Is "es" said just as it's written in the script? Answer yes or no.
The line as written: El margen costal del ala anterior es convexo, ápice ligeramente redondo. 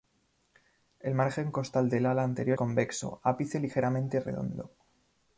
no